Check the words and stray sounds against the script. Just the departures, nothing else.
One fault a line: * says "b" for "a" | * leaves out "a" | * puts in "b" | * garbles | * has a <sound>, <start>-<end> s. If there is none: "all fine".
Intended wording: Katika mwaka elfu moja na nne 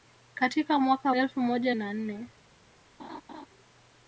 * has a laugh, 3.0-3.5 s